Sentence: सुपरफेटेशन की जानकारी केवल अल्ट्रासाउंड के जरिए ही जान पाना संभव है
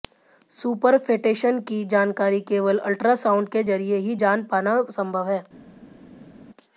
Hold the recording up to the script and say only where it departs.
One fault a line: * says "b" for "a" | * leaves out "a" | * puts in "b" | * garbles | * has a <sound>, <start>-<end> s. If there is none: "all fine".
all fine